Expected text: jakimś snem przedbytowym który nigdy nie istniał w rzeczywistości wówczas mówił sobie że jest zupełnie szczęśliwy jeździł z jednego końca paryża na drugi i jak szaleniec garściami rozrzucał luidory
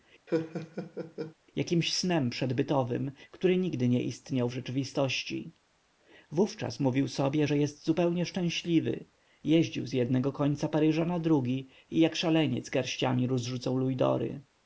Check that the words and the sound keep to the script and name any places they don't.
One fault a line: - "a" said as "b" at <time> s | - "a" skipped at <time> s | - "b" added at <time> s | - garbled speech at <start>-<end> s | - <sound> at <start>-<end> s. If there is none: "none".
- laugh at 0.3-1.3 s